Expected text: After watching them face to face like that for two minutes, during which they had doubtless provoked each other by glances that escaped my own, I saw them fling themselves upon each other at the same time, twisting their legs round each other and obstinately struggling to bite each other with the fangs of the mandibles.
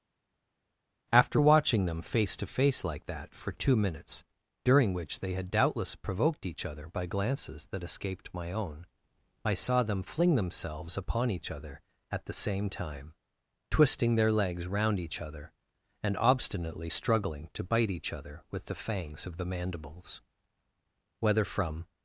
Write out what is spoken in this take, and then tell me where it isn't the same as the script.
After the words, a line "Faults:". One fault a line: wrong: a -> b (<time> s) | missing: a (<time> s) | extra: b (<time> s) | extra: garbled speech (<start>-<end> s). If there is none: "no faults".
After watching them face to face like that for two minutes, during which they had doubtless provoked each other by glances that escaped my own, I saw them fling themselves upon each other at the same time, twisting their legs round each other and obstinately struggling to bite each other with the fangs of the mandibles. Whether from
Faults:
extra: Whether from (21.2 s)